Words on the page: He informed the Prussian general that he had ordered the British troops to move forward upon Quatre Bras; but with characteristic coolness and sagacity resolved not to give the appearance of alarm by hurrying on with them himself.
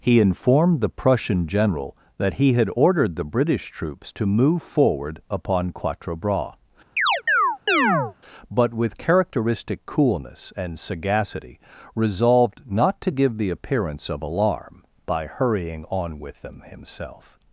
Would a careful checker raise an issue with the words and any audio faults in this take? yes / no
yes